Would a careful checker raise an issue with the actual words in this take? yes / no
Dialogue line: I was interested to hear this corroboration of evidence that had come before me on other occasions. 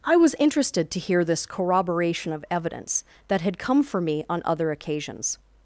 yes